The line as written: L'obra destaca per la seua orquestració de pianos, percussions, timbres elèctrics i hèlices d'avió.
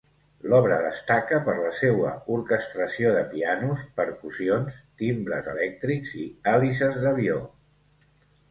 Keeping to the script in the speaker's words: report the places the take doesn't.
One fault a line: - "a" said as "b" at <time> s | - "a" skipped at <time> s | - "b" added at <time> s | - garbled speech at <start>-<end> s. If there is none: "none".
none